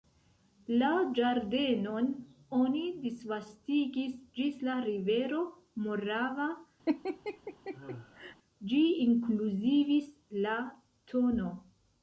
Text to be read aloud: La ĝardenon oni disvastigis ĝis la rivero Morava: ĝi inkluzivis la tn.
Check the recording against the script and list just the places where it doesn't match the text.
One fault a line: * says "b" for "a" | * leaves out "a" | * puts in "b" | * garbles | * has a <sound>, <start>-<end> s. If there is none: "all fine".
* has a laugh, 6.9-8.4 s